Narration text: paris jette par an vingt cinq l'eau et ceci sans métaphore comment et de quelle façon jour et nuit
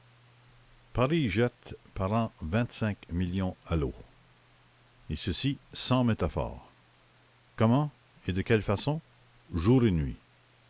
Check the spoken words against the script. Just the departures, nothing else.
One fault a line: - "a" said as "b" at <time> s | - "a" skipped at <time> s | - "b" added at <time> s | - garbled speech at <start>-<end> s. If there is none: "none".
- "millions à" added at 3.1 s